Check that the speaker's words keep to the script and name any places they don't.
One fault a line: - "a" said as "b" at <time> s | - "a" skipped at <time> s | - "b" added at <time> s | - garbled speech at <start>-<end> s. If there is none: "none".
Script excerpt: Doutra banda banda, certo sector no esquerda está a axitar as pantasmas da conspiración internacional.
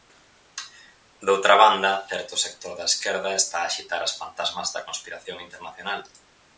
- "banda" skipped at 1.9 s
- "no" said as "da" at 2.8 s